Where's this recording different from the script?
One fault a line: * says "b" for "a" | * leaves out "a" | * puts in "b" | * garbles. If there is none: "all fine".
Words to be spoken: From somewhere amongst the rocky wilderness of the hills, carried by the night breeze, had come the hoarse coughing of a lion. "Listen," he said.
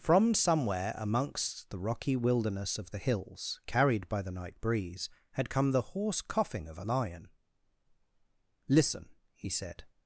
all fine